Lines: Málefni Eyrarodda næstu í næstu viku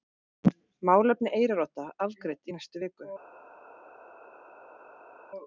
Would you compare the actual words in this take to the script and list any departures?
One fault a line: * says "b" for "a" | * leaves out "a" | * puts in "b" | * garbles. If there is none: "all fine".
* says "afgreidd" for "næstu"